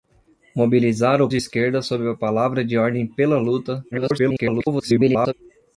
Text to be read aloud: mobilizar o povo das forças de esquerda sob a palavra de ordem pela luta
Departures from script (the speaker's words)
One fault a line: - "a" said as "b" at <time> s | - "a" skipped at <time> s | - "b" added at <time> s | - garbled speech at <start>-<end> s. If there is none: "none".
- "povo das forças" skipped at 1.3 s
- garbled speech at 3.9-5.3 s